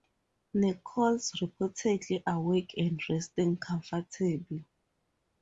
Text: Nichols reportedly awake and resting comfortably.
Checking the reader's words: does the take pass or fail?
pass